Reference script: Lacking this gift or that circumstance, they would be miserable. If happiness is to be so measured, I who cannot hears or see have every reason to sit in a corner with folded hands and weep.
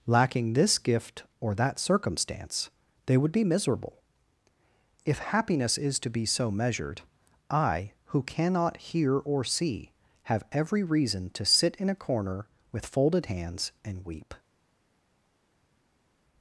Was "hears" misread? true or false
true